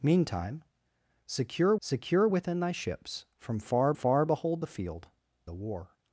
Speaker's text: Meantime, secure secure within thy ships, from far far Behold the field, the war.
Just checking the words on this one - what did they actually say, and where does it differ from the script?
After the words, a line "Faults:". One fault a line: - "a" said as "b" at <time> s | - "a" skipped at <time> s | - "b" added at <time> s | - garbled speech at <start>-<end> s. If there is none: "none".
Meantime, secure secure within thy ships, from far far Behold the field, the war.
Faults:
none